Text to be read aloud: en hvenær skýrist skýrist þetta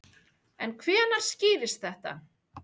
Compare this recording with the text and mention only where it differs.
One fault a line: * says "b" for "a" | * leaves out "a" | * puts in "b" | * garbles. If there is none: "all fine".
* leaves out "skýrist"